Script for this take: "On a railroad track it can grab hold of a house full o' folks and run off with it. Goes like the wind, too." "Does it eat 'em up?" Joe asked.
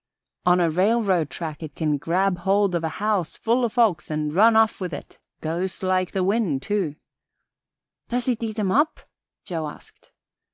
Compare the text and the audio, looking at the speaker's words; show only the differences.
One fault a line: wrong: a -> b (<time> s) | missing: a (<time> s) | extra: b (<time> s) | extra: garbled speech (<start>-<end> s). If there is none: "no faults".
no faults